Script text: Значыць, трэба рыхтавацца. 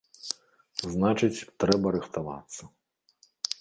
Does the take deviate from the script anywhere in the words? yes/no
no